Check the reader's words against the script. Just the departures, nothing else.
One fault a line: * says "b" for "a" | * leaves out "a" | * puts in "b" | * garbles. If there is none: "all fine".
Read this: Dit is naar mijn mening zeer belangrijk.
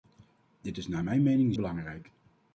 * leaves out "zeer"